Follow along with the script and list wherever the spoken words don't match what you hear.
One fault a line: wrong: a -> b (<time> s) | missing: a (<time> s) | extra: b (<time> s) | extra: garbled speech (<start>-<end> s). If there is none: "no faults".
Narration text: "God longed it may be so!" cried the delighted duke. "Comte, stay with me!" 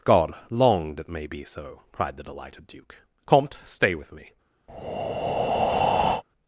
no faults